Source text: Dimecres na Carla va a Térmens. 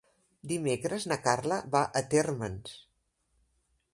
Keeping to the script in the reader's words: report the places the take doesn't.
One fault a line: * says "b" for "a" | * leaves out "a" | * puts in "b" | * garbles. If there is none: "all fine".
all fine